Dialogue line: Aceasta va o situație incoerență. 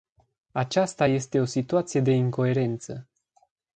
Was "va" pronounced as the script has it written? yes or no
no